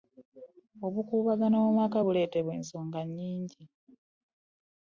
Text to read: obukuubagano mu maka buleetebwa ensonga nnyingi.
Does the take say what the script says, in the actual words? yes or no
yes